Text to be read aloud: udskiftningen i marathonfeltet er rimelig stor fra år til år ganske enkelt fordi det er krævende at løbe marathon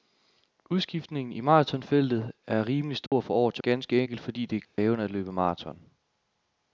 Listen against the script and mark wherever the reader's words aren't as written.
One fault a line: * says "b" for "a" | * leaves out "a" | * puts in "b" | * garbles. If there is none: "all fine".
* leaves out "år"